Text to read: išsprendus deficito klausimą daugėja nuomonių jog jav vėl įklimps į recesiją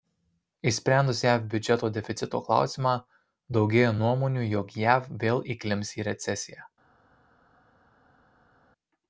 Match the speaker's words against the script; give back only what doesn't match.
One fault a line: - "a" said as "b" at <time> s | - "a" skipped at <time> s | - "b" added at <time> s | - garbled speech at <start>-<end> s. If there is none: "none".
- "jav biudžeto" added at 1.2 s